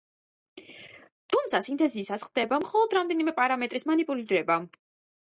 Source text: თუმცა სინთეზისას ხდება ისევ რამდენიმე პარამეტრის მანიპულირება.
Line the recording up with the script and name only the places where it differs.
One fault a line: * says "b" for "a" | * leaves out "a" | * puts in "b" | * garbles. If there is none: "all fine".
* says "მხოლოდ" for "ისევ"